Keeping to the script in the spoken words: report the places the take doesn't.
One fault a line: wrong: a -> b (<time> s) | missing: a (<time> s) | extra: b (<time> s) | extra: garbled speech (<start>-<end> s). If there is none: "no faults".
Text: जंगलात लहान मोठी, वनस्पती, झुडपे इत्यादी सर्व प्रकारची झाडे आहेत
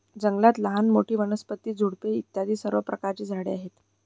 no faults